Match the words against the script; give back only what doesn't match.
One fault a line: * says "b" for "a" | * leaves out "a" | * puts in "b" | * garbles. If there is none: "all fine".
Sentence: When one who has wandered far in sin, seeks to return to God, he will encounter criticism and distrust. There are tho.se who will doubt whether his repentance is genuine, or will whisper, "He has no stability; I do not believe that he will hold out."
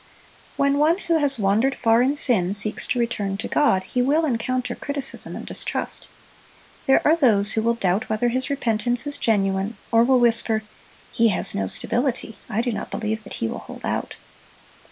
all fine